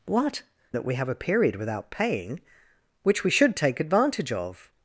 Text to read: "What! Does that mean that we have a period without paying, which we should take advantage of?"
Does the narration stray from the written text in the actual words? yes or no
yes